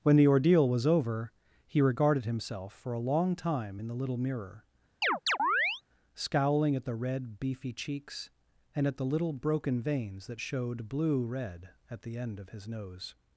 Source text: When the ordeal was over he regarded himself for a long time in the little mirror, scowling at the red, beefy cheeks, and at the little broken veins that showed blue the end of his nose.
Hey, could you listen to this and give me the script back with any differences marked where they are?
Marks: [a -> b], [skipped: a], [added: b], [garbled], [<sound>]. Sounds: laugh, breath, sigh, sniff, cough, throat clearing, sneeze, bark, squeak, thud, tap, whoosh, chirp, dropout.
When the ordeal was over he regarded himself for a long time in the little mirror, [chirp] scowling at the red, beefy cheeks, and at the little broken veins that showed blue [added: red at] the end of his nose.